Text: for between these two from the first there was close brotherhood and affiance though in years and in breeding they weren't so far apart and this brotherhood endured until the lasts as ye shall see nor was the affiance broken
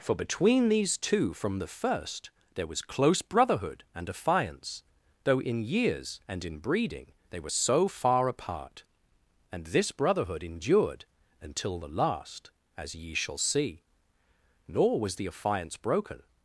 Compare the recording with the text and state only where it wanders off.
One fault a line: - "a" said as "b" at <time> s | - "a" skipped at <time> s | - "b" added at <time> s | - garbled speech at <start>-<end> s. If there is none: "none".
- "weren't" said as "were" at 7.4 s
- "lasts" said as "last" at 11.9 s